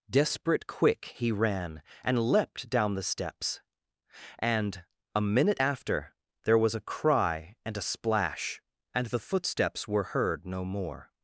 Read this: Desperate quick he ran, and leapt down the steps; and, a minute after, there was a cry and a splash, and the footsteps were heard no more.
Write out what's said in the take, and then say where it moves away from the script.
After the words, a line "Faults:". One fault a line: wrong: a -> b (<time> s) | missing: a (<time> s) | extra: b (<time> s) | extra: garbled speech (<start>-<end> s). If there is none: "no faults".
Desperate quick he ran, and leapt down the steps; and, a minute after, there was a cry and a splash, and the footsteps were heard no more.
Faults:
no faults